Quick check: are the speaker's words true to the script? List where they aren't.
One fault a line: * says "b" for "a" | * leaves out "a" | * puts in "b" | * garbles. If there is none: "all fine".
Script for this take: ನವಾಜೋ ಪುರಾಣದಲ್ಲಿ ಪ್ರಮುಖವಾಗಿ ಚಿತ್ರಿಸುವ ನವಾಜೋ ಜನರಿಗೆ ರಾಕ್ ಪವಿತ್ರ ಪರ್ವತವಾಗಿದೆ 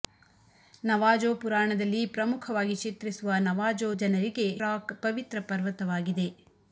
all fine